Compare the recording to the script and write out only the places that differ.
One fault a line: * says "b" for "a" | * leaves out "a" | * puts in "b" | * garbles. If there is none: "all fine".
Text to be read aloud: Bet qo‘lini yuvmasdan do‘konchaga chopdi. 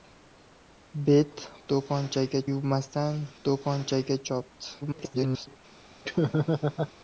* says "do‘konchaga" for "qo‘lini"
* garbles